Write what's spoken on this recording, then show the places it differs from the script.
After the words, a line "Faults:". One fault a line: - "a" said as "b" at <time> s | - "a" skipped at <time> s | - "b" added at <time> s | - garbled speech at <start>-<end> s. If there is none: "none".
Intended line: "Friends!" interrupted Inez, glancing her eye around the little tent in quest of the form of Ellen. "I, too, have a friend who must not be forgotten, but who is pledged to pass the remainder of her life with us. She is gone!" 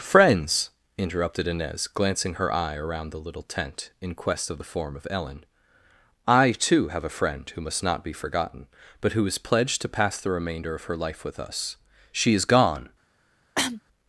"Friends!" interrupted Inez, glancing her eye around the little tent in quest of the form of Ellen. "I, too, have a friend who must not be forgotten, but who is pledged to pass the remainder of her life with us. She is gone!"
Faults:
none